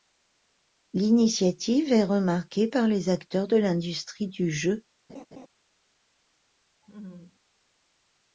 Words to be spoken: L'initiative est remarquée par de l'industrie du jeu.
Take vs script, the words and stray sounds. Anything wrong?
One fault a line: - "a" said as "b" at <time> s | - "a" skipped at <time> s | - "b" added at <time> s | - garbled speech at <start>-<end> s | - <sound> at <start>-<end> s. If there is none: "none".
- "les acteurs" added at 2.9 s
- laugh at 5.1-5.5 s
- laugh at 6.8-7.4 s